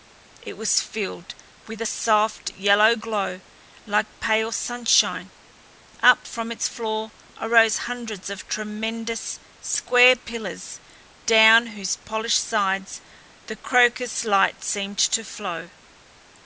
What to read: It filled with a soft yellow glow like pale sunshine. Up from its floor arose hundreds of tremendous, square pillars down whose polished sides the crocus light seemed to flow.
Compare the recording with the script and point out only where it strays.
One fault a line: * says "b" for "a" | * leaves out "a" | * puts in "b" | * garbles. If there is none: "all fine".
* puts in "was"